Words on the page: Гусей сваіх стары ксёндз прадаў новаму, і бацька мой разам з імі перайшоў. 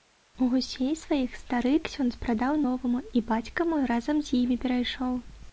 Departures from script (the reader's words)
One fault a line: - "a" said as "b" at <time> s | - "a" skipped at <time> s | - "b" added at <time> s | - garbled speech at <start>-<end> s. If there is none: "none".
none